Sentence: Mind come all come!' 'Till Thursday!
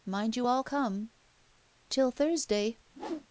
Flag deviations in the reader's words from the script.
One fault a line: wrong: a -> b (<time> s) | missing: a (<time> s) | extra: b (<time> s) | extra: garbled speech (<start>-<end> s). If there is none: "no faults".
wrong: come -> you (0.3 s)